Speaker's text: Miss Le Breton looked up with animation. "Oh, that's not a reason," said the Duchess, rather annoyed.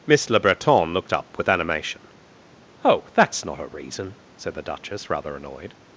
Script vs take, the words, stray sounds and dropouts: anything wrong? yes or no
no